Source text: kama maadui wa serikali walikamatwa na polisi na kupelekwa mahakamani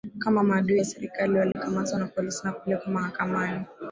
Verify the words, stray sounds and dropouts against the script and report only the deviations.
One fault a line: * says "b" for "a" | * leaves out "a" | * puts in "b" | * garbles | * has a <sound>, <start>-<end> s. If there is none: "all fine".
* has a dropout, 1.5-1.6 s